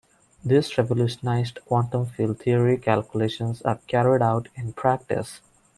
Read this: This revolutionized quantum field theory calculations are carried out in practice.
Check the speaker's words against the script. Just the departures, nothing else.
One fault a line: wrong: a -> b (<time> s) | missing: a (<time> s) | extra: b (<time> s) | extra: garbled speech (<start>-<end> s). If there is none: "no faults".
no faults